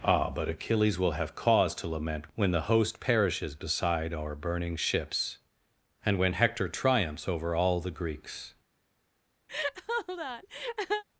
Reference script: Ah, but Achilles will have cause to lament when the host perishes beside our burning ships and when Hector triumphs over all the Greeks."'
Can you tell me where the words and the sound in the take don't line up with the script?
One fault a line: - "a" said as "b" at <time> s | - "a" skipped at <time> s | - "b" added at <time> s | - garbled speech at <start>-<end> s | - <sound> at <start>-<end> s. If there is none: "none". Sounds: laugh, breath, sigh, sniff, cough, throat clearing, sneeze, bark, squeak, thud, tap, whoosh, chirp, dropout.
- laugh at 9.5-11.0 s